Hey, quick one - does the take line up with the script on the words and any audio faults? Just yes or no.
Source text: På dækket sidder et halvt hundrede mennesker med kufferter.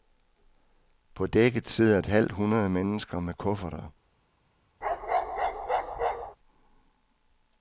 no